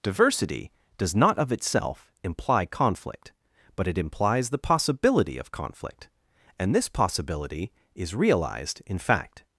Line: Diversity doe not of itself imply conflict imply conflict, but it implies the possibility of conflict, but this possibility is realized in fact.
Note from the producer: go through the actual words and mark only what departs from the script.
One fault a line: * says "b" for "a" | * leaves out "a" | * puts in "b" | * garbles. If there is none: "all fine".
* says "does" for "doe"
* leaves out "imply conflict"
* says "and" for "but"